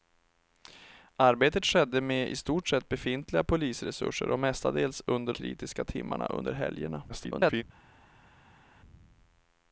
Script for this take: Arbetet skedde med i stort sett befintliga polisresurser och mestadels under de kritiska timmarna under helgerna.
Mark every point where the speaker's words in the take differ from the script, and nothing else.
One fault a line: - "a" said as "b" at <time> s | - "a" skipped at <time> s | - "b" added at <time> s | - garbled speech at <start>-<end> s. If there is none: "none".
- "de" skipped at 5.3 s
- garbled speech at 7.1-7.6 s